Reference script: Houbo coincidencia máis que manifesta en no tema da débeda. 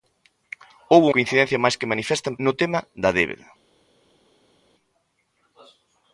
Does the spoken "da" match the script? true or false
true